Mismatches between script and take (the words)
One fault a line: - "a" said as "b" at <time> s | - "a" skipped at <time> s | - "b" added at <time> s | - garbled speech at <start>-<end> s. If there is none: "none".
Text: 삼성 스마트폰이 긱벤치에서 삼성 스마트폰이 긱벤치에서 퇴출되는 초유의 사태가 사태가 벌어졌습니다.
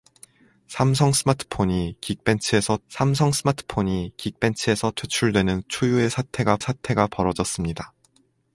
none